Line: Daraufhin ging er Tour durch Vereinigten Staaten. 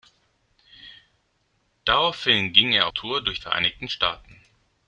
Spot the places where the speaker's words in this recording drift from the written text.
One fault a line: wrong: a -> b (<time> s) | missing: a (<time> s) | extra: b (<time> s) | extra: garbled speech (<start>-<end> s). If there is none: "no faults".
no faults